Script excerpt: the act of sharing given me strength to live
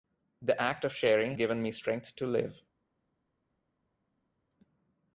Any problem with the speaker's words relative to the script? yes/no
no